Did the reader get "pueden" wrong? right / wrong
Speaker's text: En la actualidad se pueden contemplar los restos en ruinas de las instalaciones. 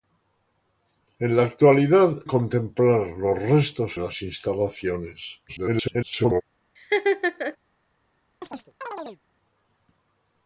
wrong